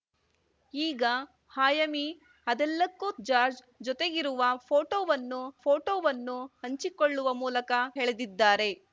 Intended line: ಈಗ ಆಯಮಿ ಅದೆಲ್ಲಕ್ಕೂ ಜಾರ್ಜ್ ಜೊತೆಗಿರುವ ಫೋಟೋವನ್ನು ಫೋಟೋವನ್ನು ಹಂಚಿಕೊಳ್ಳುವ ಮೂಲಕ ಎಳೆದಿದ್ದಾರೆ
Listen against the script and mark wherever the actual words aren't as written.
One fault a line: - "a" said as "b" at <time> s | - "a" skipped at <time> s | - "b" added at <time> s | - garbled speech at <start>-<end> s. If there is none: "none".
none